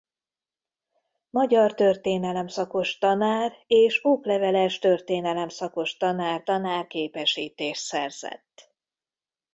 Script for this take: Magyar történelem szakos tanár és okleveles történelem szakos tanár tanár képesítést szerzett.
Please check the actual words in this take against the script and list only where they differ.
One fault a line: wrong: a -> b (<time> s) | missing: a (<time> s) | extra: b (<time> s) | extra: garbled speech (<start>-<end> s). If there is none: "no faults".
no faults